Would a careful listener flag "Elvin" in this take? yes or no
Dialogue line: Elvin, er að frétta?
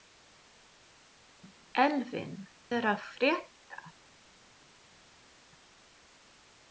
no